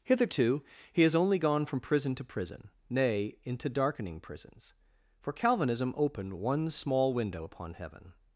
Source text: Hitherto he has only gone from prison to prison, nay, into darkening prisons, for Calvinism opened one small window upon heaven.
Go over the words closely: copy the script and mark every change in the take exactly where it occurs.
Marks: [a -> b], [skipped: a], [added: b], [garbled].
Hitherto he has only gone from prison to prison, nay, into darkening prisons, for Calvinism opened one small window upon heaven.